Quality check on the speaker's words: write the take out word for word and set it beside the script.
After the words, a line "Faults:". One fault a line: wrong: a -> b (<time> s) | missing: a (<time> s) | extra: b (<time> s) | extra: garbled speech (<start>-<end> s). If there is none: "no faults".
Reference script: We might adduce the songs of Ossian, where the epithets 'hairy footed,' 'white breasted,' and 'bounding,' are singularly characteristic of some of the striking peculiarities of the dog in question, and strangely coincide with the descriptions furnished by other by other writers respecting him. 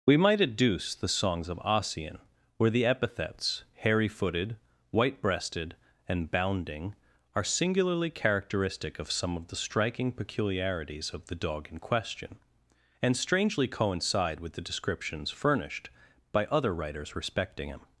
We might adduce the songs of Ossian, where the epithets 'hairy footed,' 'white breasted,' and 'bounding,' are singularly characteristic of some of the striking peculiarities of the dog in question, and strangely coincide with the descriptions furnished by other writers respecting him.
Faults:
missing: by other (16.7 s)